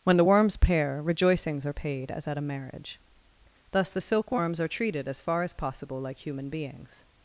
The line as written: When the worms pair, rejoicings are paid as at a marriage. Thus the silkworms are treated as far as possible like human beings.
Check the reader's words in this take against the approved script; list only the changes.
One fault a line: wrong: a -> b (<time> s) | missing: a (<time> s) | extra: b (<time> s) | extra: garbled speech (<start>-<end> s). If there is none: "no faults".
no faults